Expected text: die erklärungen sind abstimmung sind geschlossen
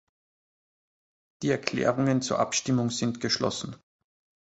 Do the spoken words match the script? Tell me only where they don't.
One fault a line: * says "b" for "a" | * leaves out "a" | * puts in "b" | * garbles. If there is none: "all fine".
* says "zur" for "sind"